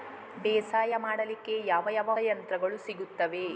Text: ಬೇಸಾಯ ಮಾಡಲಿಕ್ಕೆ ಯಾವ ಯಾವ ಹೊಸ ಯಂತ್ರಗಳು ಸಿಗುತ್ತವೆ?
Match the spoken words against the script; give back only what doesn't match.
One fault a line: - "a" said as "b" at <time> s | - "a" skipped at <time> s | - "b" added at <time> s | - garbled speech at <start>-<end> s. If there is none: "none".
- "ಹೊಸ" skipped at 2.1 s